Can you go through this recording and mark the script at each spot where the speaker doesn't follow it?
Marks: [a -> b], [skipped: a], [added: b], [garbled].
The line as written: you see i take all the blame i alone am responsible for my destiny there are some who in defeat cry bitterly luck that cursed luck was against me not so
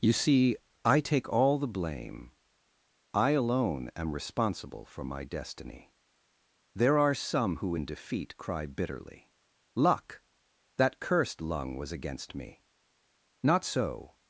you see i take all the blame i alone am responsible for my destiny there are some who in defeat cry bitterly luck that cursed [luck -> lung] was against me not so